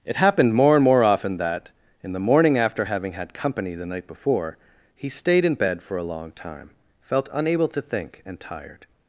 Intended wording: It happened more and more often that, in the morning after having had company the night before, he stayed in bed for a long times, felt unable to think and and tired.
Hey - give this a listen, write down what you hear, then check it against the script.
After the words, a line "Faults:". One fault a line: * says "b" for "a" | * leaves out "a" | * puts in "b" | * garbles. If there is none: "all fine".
It happened more and more often that, in the morning after having had company the night before, he stayed in bed for a long time, felt unable to think and tired.
Faults:
* says "time" for "times"
* leaves out "and"